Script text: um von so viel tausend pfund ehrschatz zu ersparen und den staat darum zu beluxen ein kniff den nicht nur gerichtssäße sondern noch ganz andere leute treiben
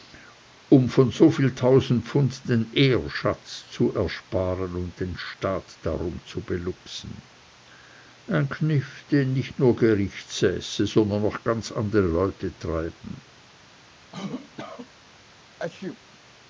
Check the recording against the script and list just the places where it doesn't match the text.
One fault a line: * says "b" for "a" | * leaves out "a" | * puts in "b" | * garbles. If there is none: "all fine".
* puts in "den"